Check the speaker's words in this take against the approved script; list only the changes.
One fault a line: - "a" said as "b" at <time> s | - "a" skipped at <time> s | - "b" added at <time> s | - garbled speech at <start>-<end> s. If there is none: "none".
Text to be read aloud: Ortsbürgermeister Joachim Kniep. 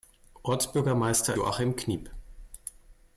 none